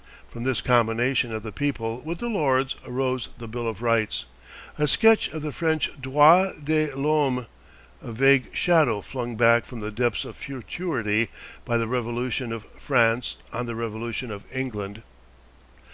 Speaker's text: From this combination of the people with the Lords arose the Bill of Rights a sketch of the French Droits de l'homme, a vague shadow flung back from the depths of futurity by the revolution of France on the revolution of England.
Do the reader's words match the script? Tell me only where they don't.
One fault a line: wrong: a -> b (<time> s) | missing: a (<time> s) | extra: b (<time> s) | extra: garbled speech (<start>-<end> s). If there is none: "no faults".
no faults